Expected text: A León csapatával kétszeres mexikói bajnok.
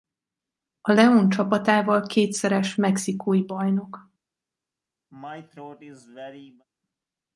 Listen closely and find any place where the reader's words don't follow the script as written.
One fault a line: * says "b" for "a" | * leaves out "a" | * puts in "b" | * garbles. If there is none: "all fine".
all fine